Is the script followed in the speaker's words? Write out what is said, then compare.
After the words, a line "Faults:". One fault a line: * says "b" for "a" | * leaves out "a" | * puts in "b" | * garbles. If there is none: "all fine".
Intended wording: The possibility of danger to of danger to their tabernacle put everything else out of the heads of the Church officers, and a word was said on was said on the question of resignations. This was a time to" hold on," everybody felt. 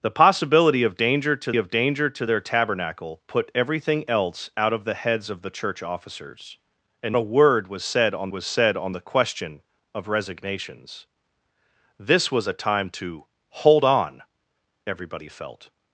The possibility of danger to of danger to their tabernacle put everything else out of the heads of the Church officers, and a word was said on was said on the question of resignations. This was a time to" hold on," everybody felt.
Faults:
all fine